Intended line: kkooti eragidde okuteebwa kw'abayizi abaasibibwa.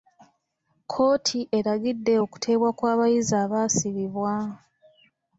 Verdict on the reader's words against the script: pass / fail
pass